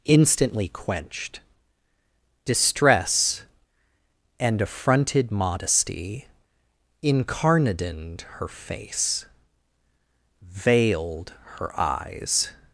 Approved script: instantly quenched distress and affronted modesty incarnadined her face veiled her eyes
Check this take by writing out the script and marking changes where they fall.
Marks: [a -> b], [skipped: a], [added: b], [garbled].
instantly quenched distress and affronted modesty incarnadined her face veiled her eyes